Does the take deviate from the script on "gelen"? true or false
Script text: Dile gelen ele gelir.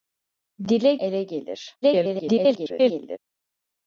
true